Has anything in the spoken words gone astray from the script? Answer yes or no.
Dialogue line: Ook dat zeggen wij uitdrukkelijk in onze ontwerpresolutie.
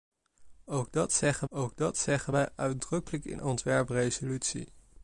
yes